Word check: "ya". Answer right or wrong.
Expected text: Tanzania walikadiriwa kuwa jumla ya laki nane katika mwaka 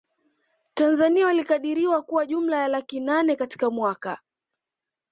right